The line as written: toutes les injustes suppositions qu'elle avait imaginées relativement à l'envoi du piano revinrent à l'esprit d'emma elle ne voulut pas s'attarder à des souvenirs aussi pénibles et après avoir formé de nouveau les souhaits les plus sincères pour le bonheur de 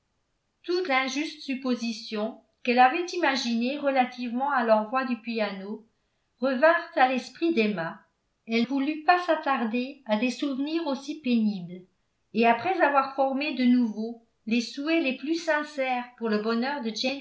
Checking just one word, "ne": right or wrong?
wrong